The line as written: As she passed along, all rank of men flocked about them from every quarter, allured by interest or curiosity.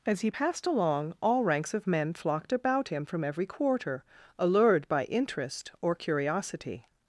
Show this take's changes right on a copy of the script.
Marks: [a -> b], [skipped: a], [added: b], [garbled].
As [she -> he] passed along, all [rank -> ranks] of men flocked about [them -> him] from every quarter, allured by interest or curiosity.